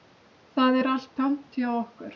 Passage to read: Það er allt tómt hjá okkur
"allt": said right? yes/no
yes